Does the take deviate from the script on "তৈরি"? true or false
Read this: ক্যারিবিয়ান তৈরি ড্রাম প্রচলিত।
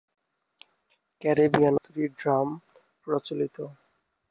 false